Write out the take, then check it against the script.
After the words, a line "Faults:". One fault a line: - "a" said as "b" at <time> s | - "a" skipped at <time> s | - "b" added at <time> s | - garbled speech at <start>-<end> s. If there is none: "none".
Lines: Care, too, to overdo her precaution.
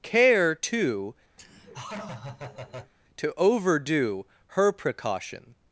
Care, too, to overdo her precaution.
Faults:
none